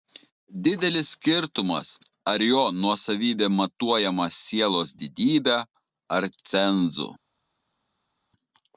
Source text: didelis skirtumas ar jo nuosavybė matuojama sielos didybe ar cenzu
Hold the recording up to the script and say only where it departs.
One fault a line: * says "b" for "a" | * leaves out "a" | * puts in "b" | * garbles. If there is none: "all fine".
all fine